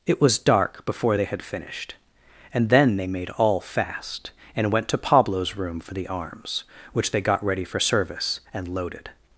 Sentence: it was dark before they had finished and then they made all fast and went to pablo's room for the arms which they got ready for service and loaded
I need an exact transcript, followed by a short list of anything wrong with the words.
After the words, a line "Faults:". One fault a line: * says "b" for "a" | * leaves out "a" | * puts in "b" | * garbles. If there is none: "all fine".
it was dark before they had finished and then they made all fast and went to pablo's room for the arms which they got ready for service and loaded
Faults:
all fine